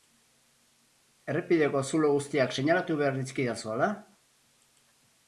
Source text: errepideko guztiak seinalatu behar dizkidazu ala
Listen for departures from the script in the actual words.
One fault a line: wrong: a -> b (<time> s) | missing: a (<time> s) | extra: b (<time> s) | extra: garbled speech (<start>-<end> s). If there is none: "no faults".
extra: zulo (1.9 s)